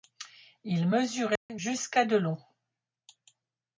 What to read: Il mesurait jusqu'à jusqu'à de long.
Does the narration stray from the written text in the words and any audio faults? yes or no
yes